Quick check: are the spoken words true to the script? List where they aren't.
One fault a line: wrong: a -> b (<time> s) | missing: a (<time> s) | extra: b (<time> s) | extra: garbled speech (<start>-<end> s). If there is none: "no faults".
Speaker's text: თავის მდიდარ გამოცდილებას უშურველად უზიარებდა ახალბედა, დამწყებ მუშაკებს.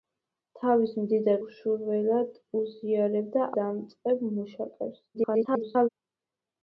missing: გამოცდილებას (1.4 s)
missing: ახალბედა (3.5 s)
extra: garbled speech (5.1-5.9 s)